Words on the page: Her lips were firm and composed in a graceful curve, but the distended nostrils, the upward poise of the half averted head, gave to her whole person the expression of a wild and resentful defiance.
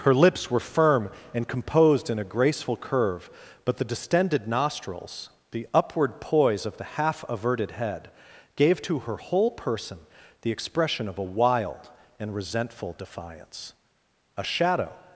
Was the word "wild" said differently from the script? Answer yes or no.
no